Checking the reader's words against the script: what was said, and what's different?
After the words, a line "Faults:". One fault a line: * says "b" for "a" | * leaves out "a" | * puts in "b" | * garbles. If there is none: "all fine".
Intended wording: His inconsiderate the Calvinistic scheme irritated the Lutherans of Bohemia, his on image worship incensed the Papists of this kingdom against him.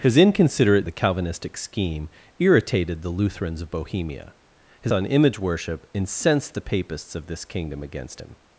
His inconsiderate the Calvinistic scheme irritated the Lutherans of Bohemia, his on image worship incensed the Papists of this kingdom against him.
Faults:
all fine